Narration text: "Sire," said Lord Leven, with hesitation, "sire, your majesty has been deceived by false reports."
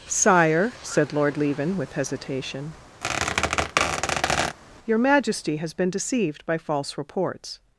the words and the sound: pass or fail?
fail